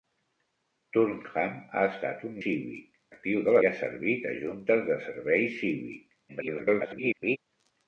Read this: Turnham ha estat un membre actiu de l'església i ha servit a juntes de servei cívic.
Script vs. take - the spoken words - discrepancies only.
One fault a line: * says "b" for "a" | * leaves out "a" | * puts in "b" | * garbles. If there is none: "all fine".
* says "cívic" for "membre"
* leaves out "l'església"
* garbles